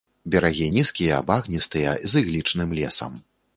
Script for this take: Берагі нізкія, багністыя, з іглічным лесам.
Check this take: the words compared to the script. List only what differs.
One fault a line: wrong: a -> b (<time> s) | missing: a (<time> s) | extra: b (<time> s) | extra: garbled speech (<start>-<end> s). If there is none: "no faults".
no faults